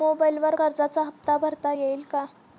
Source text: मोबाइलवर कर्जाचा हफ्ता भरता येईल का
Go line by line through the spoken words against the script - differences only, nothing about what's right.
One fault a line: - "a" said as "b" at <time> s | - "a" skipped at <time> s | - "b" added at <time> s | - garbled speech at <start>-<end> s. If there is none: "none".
none